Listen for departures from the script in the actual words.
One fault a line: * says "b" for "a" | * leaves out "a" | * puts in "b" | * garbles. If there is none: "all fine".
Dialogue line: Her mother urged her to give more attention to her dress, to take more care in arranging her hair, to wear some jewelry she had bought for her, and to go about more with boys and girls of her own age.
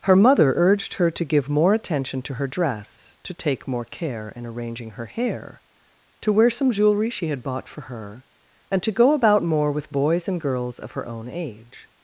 all fine